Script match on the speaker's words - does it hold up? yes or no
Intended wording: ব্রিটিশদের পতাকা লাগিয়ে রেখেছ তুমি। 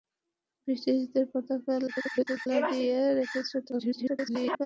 no